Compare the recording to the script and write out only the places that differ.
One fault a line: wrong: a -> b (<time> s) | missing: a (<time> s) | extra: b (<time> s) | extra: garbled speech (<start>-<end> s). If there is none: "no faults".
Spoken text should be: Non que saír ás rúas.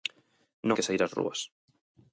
no faults